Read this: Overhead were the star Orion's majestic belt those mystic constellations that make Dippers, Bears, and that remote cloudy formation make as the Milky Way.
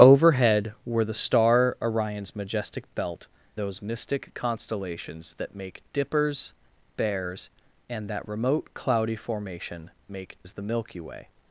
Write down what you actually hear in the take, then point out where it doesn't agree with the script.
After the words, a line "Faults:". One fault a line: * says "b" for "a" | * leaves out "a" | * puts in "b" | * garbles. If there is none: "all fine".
Overhead were the star Orion's majestic belt those mystic constellations that make Dippers, Bears, and that remote cloudy formation make as the Milky Way.
Faults:
all fine